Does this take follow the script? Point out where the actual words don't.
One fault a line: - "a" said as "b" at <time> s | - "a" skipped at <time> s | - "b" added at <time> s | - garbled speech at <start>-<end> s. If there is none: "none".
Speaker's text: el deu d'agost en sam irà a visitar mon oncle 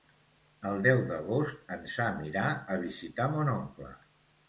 none